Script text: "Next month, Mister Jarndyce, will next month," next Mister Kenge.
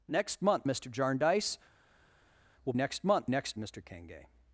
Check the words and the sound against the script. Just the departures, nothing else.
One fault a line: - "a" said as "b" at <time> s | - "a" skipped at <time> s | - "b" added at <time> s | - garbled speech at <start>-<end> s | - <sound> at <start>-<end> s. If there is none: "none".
none